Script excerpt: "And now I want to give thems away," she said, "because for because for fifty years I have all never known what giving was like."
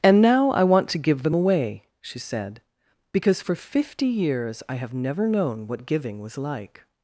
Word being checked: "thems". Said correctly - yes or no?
no